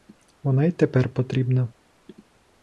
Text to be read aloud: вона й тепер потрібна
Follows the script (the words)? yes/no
yes